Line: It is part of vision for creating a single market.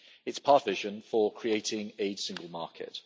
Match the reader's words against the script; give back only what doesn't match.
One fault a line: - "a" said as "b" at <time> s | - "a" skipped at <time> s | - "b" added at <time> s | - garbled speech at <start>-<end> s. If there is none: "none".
none